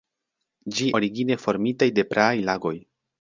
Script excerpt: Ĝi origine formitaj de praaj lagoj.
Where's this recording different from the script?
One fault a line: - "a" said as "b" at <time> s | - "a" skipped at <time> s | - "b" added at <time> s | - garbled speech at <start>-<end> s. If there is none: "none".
none